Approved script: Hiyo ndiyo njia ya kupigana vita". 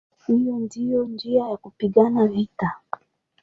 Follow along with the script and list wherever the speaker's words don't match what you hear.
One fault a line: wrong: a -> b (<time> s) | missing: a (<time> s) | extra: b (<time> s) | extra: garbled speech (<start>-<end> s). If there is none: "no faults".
no faults